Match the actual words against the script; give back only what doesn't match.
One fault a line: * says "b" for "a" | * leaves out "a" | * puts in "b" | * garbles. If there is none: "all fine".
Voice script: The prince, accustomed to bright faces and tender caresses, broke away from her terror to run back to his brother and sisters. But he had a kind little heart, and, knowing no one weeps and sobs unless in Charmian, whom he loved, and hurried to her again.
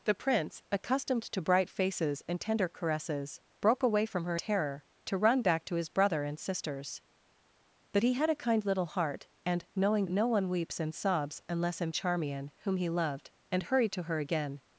all fine